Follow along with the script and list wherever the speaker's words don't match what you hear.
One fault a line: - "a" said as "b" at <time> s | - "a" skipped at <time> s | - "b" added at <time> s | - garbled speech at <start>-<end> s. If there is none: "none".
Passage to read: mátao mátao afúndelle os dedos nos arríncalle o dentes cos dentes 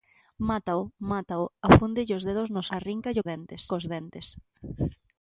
none